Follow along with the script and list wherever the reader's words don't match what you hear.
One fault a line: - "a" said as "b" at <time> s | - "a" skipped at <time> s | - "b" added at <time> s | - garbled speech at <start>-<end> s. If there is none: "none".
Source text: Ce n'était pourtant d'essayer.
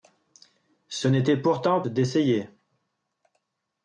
none